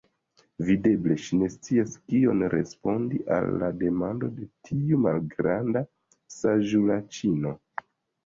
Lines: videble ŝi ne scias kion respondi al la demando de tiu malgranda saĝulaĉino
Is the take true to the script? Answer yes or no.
yes